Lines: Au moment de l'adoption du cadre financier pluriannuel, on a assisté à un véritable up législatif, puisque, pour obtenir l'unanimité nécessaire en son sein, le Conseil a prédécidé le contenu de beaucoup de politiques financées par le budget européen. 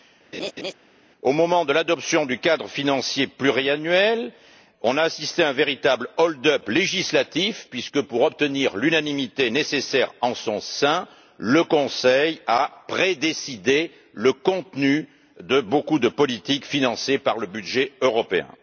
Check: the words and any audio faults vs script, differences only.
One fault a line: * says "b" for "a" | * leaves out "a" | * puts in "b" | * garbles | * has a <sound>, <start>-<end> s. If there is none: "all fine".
* has a laugh, 0.3-0.7 s
* puts in "hold"